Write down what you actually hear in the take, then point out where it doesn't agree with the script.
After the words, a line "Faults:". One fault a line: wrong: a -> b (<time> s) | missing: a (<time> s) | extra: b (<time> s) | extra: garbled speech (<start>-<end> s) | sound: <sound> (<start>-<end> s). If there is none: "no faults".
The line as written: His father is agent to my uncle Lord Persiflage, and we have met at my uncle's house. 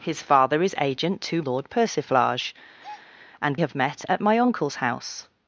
His father is agent to Lord Persiflage, and have met at my uncle's house.
Faults:
missing: my uncle (1.4 s)
sound: breath (2.8-3.1 s)
missing: we (3.6 s)